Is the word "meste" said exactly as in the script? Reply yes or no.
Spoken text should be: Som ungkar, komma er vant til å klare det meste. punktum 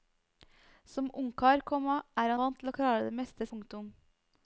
yes